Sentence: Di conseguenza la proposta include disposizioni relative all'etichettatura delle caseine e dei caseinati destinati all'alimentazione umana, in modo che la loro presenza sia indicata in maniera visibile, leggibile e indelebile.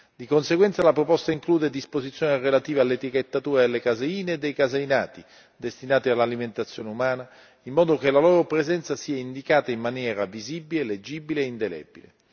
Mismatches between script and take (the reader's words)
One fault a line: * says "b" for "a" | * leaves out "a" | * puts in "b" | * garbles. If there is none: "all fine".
all fine